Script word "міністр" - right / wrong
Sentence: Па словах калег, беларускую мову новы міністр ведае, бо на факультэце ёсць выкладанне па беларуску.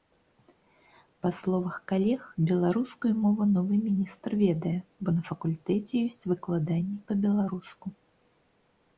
right